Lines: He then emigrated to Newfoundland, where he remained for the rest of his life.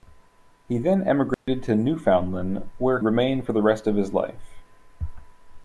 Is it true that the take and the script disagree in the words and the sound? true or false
true